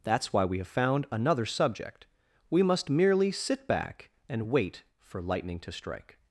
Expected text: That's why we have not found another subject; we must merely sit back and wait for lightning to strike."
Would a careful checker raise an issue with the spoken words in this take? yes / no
yes